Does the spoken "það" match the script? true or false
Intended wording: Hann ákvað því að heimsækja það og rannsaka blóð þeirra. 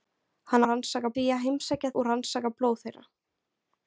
false